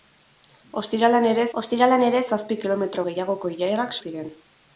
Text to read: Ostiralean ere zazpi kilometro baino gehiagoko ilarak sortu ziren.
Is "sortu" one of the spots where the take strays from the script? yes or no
yes